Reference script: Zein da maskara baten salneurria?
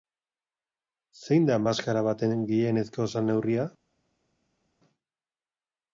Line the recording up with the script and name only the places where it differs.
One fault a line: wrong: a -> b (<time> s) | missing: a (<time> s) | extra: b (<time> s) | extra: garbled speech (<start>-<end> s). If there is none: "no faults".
extra: gehienezko (2.5 s)